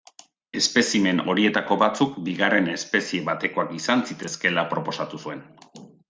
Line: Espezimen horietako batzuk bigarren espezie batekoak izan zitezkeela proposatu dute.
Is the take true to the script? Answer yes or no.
no